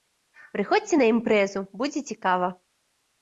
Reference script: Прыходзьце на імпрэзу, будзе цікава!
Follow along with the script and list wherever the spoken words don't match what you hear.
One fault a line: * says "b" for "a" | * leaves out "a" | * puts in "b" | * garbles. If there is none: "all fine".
all fine